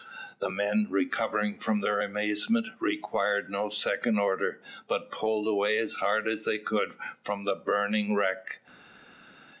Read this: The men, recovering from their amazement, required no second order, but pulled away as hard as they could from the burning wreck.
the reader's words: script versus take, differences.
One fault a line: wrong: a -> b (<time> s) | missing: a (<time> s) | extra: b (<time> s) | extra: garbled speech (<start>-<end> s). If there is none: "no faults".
no faults